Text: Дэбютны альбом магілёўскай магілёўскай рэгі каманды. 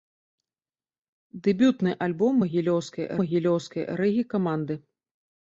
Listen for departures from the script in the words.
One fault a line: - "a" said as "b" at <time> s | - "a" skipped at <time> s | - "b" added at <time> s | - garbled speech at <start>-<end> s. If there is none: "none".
none